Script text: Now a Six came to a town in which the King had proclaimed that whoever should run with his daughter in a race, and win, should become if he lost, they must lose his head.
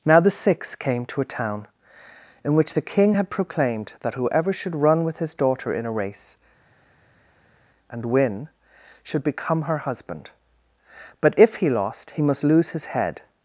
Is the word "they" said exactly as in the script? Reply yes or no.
no